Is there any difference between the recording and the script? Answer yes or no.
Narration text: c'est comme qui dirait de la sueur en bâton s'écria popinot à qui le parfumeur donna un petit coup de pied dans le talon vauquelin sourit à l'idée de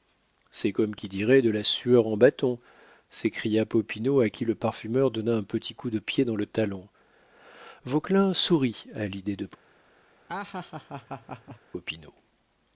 no